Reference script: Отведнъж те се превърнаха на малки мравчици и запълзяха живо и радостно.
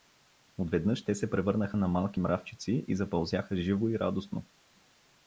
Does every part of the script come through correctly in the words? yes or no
yes